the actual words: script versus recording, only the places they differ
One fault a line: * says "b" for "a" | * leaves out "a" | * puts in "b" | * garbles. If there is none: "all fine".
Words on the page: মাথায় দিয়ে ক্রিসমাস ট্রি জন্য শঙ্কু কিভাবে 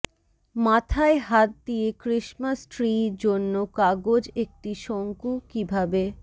* puts in "হাত"
* puts in "কাগজ একটি"